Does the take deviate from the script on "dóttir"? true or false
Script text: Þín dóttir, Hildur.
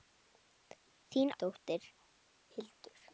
false